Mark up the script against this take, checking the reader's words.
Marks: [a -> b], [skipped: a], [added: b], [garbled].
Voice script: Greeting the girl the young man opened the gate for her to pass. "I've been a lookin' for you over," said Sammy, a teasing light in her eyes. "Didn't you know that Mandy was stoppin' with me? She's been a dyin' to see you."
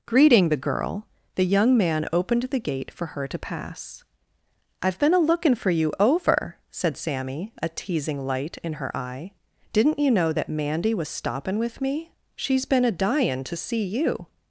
Greeting the girl the young man opened the gate for her to pass. "I've been a lookin' for you over," said Sammy, a teasing light in her [eyes. -> eye] "Didn't you know that Mandy was stoppin' with me? She's been a dyin' to see you."